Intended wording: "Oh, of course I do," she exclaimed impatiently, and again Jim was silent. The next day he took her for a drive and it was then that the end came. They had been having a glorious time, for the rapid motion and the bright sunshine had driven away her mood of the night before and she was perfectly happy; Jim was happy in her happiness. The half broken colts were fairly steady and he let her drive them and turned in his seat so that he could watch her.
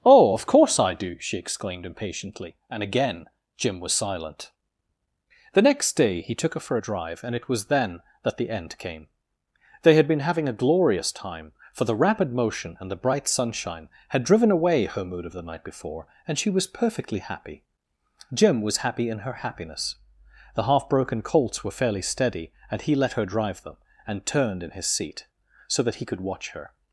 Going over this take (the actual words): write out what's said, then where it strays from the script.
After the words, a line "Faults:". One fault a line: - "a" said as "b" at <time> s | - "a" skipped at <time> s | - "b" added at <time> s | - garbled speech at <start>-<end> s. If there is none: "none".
"Oh, of course I do," she exclaimed impatiently, and again Jim was silent. The next day he took her for a drive and it was then that the end came. They had been having a glorious time, for the rapid motion and the bright sunshine had driven away her mood of the night before and she was perfectly happy; Jim was happy in her happiness. The half broken colts were fairly steady and he let her drive them and turned in his seat so that he could watch her.
Faults:
none